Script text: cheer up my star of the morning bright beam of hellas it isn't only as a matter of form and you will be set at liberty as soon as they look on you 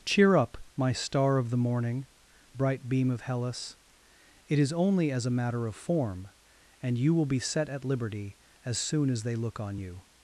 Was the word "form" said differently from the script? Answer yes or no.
no